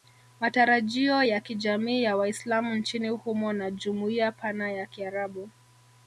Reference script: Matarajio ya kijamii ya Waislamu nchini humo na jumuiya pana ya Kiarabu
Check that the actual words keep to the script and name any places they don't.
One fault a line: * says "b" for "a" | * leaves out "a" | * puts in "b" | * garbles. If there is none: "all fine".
all fine